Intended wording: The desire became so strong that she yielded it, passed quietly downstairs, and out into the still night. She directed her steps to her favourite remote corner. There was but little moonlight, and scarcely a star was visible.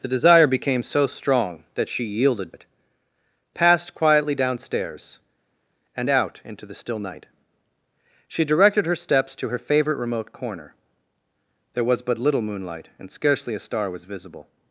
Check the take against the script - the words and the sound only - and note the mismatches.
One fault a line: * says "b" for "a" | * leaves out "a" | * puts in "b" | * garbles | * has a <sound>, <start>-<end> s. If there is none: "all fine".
all fine